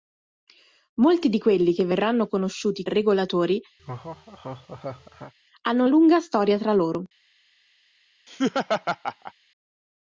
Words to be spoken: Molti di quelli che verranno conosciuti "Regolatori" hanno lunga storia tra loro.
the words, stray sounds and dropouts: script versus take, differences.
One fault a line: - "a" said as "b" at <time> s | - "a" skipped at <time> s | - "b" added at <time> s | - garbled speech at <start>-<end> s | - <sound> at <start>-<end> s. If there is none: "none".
- laugh at 3.8-5.3 s
- laugh at 8.3-9.3 s